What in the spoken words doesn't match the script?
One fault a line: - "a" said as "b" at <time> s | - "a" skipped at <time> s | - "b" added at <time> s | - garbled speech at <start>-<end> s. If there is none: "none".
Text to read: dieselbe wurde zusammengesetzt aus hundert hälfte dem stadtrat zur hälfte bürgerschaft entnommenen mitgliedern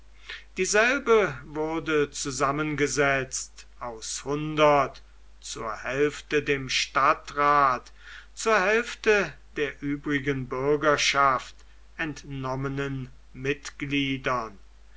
- "zur" added at 5.4 s
- "der übrigen" added at 9.6 s